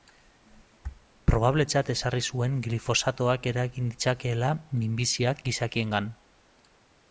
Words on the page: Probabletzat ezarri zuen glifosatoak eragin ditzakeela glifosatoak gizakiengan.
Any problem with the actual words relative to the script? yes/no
yes